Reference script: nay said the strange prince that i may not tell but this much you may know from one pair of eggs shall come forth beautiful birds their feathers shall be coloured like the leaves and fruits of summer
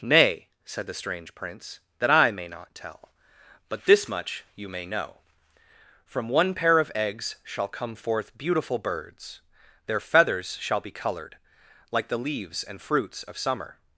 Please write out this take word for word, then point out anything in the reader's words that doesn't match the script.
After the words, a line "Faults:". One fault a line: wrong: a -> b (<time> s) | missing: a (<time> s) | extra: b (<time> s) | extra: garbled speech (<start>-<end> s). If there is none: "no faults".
nay said the strange prince that i may not tell but this much you may know from one pair of eggs shall come forth beautiful birds their feathers shall be coloured like the leaves and fruits of summer
Faults:
no faults